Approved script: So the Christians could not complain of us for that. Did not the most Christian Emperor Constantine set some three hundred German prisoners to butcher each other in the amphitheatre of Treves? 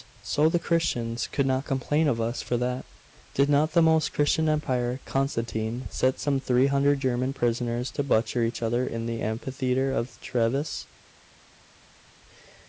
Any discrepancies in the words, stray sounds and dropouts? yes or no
no